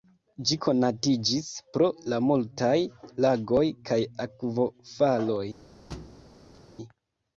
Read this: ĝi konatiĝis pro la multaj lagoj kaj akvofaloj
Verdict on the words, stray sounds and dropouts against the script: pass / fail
fail